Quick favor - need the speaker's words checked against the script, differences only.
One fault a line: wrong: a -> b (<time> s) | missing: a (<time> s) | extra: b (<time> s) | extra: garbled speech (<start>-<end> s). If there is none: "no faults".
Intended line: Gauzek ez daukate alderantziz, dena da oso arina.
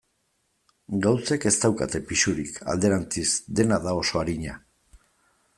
extra: pisurik (2.1 s)